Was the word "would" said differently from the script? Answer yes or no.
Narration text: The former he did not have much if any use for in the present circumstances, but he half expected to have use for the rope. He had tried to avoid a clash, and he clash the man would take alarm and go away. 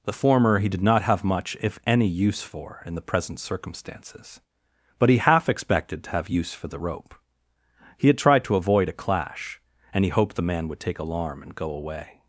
no